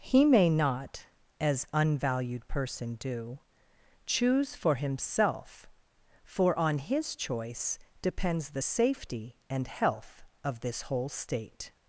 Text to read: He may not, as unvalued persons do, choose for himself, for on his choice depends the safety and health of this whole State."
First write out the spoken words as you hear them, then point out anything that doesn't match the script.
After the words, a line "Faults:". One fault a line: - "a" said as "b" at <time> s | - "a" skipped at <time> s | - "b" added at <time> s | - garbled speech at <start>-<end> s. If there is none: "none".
He may not, as unvalued person do, choose for himself, for on his choice depends the safety and health of this whole State."
Faults:
- "persons" said as "person" at 2.5 s